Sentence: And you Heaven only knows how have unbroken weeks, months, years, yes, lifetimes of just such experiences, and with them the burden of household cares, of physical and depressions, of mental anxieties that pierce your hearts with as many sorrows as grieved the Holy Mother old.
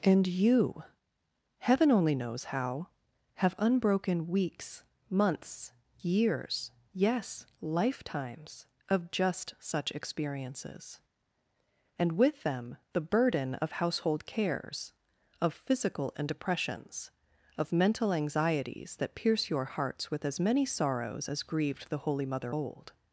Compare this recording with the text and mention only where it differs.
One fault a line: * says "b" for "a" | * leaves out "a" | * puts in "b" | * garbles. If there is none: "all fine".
all fine